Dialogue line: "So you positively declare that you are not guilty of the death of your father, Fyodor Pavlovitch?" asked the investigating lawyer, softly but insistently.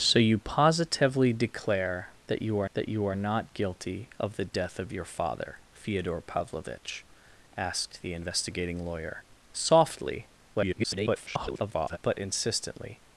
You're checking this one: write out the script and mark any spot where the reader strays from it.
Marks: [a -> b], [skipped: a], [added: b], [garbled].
"So you positively declare that you are [added: that you are] not guilty of the death of your father, Fyodor Pavlovitch?" asked the investigating lawyer, softly [garbled] but insistently.